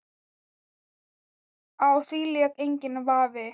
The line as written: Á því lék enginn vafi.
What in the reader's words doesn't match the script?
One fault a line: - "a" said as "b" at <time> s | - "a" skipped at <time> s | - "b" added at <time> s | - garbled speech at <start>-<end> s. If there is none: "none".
none